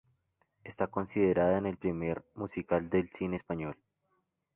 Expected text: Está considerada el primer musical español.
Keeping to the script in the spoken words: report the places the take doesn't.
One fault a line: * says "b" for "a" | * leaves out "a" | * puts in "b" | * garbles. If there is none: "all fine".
* puts in "del cine"